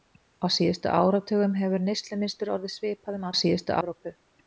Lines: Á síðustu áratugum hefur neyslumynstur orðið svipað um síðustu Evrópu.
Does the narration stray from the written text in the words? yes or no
no